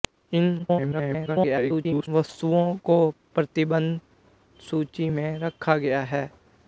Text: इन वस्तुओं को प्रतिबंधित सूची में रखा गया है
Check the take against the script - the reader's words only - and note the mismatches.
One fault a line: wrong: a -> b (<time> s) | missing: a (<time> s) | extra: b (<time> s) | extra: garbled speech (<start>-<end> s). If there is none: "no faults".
extra: garbled speech (0.6-2.1 s)